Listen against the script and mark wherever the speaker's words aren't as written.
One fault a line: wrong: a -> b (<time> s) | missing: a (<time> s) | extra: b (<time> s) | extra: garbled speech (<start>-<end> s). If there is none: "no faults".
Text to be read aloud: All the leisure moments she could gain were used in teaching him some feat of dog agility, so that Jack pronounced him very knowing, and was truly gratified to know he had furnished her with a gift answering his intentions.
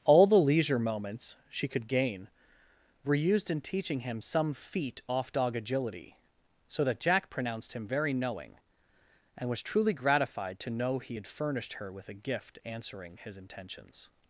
wrong: of -> off (5.1 s)